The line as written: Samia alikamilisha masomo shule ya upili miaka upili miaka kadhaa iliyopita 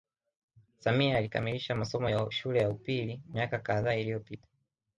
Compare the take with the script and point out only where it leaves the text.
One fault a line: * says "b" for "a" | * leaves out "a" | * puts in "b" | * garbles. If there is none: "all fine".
* puts in "ya"
* leaves out "upili miaka"